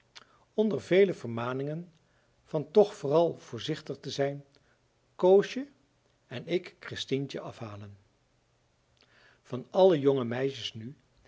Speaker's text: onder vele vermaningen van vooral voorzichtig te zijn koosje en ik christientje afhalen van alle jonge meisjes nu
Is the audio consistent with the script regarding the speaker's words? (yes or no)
no